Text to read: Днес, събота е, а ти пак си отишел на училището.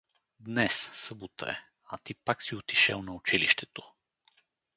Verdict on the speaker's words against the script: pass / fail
pass